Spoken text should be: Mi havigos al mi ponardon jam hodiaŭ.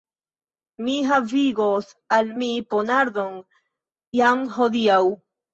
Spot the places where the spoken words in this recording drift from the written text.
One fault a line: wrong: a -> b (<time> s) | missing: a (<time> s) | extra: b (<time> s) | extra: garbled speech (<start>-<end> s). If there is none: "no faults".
no faults